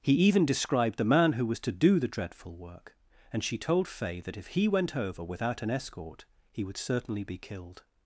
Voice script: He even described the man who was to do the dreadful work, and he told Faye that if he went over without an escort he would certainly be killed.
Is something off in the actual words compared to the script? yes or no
yes